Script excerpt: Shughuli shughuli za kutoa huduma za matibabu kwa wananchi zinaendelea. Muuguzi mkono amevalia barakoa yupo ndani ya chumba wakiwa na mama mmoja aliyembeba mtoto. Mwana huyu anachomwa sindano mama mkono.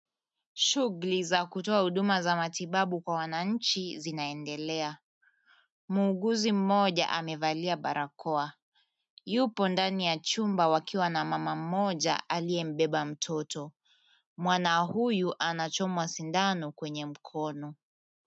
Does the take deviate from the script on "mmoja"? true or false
false